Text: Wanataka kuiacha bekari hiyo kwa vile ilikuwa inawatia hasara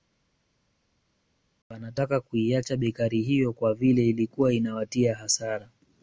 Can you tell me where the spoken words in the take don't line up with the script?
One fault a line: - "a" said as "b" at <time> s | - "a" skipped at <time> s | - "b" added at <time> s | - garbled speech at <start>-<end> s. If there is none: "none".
none